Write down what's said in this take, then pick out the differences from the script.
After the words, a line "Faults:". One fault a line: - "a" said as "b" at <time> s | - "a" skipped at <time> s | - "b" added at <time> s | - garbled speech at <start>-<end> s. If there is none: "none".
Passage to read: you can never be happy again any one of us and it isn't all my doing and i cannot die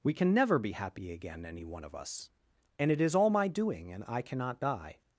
we can never be happy again any one of us and it is all my doing and i cannot die
Faults:
- "you" said as "we" at 0.0 s
- "isn't" said as "is" at 3.0 s